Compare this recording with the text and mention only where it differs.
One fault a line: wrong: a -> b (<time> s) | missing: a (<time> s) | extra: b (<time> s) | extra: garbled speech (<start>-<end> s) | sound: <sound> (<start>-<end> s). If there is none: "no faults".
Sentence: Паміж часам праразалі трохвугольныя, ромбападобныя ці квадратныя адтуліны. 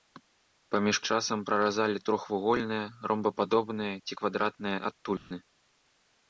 sound: dropout (5.2-5.3 s)